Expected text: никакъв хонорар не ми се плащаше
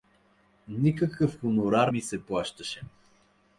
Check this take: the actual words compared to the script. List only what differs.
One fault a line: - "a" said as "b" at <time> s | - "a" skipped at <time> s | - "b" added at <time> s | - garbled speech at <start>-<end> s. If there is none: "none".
- "не" skipped at 1.9 s